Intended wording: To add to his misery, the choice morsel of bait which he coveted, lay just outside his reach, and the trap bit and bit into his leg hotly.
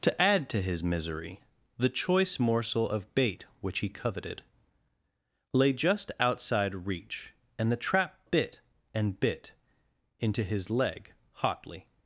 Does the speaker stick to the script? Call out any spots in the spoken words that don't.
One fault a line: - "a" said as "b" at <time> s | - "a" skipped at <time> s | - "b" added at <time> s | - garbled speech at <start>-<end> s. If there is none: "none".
- "his" skipped at 6.9 s